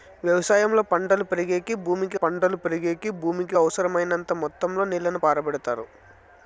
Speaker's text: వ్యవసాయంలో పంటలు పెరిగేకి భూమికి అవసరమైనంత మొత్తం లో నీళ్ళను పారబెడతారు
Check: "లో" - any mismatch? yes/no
no